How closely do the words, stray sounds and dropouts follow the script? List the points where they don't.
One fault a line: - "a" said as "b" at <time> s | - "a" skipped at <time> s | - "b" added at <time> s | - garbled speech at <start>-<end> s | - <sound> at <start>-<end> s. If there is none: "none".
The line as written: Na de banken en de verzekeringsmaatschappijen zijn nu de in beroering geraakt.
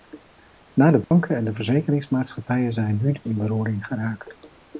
- dropout at 1.0-1.1 s